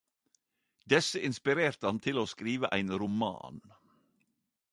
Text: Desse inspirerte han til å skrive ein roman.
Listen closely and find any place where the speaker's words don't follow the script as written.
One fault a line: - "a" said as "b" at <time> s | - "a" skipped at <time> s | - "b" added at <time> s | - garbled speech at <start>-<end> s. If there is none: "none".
none